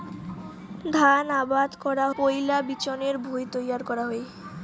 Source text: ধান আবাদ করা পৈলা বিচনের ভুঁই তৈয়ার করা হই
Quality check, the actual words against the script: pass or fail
pass